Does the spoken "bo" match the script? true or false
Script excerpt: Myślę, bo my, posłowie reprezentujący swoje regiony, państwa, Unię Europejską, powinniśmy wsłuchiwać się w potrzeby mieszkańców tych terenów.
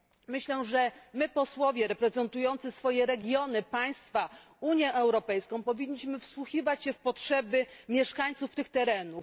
false